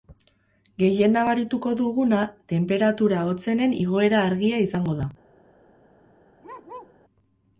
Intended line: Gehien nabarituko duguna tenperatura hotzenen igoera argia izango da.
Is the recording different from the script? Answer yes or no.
no